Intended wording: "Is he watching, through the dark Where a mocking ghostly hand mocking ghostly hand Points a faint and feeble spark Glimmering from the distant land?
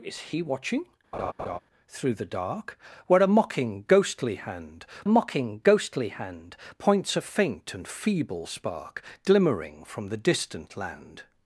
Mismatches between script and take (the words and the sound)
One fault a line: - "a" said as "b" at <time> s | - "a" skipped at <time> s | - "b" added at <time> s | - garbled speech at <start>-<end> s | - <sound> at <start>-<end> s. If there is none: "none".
- laugh at 1.1-1.6 s